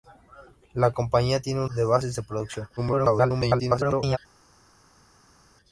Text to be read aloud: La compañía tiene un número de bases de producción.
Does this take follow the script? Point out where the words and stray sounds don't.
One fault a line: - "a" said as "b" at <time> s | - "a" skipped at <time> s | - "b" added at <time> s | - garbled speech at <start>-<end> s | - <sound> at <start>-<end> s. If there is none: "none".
- "número" skipped at 1.7 s
- garbled speech at 2.8-4.2 s